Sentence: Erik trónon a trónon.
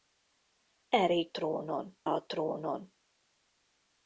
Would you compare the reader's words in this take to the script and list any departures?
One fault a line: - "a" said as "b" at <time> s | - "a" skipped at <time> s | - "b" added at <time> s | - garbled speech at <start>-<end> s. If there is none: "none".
none